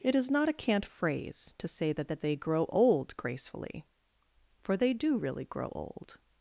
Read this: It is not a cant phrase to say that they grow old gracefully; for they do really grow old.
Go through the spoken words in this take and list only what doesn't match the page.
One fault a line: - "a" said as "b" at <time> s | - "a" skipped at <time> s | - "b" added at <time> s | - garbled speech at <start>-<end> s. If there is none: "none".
- "that" added at 2.1 s